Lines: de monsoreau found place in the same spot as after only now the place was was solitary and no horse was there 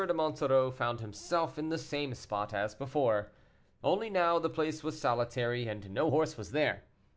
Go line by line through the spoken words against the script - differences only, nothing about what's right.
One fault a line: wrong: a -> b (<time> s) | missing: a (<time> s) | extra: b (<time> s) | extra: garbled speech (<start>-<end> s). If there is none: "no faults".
wrong: place -> himself (1.0 s)
wrong: after -> before (2.7 s)
missing: was (5.0 s)